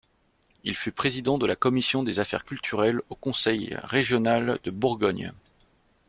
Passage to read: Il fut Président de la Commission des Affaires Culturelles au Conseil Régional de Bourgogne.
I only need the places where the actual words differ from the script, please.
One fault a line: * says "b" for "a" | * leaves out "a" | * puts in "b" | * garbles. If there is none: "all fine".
all fine